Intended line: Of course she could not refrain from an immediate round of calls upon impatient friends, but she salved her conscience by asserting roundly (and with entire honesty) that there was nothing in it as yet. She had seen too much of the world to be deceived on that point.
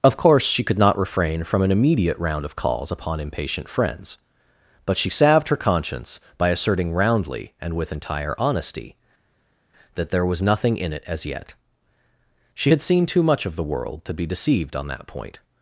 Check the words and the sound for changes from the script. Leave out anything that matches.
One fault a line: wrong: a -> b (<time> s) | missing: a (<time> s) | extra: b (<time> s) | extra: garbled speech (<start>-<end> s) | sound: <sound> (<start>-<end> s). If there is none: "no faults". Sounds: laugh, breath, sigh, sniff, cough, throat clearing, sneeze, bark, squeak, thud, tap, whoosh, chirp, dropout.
no faults